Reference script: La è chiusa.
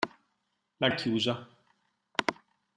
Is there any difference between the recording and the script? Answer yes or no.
no